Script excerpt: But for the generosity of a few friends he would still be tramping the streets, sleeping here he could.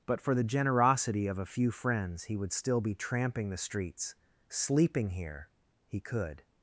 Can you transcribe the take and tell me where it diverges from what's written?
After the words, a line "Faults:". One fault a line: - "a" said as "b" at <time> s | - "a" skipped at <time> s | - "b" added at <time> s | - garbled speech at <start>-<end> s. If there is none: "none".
But for the generosity of a few friends he would still be tramping the streets, sleeping here he could.
Faults:
none